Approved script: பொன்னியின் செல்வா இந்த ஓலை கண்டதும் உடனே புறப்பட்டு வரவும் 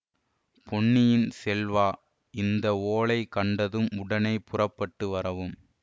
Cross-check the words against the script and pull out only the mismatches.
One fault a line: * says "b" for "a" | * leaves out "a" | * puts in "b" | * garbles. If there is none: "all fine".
all fine